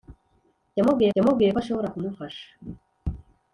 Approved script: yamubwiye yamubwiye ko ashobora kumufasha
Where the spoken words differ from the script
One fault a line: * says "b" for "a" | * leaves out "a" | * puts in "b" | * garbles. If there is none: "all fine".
all fine